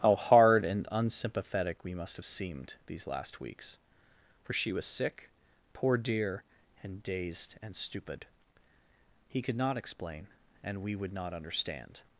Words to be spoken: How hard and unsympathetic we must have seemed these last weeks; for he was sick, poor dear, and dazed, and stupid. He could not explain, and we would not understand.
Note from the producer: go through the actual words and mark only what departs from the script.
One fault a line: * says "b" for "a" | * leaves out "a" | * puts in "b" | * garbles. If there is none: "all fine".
* says "she" for "he"